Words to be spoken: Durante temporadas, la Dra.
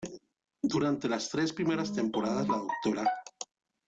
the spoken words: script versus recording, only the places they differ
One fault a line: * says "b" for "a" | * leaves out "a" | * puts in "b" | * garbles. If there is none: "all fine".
* puts in "las tres primeras"